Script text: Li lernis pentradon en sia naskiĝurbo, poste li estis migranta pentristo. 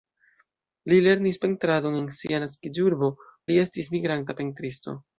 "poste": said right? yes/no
no